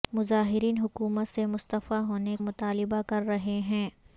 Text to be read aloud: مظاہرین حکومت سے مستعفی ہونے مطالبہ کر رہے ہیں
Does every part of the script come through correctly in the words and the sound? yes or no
yes